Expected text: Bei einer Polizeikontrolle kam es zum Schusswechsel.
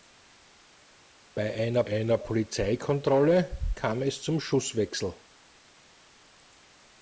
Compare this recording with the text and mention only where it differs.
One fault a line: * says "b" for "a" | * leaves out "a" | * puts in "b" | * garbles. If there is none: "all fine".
* puts in "einer"